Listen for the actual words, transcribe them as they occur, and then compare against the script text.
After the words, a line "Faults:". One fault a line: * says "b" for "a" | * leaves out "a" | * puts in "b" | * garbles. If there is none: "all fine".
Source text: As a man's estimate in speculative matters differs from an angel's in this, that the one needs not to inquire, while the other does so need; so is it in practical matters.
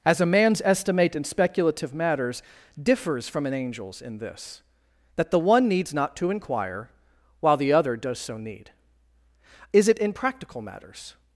As a man's estimate in speculative matters differs from an angel's in this, that the one needs not to inquire, while the other does so need; is it in practical matters.
Faults:
* leaves out "so"